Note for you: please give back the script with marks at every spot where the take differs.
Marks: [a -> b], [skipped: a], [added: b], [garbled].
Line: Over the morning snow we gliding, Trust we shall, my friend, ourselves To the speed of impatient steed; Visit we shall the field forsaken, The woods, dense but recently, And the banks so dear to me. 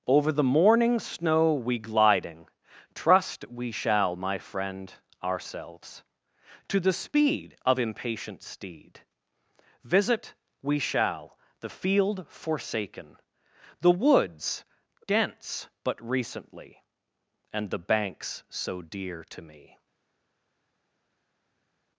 Over the morning snow we gliding, Trust we shall, my friend, ourselves To the speed of impatient steed; Visit we shall the field forsaken, The woods, dense but recently, And the banks so dear to me.